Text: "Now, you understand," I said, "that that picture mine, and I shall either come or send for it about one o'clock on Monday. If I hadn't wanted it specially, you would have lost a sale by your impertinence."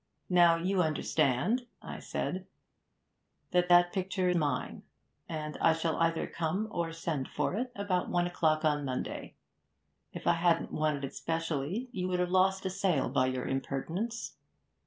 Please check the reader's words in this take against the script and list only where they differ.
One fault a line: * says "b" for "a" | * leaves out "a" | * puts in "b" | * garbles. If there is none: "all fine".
all fine